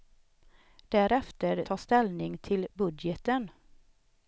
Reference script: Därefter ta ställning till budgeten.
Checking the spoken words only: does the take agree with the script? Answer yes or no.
yes